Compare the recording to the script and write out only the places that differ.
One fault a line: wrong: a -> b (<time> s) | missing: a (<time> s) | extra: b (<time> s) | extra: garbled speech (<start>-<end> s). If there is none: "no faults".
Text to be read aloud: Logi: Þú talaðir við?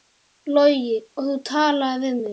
extra: Og (1.2 s)